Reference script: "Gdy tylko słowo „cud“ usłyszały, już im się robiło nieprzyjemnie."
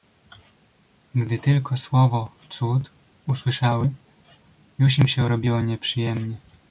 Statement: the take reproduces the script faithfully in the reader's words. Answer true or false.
true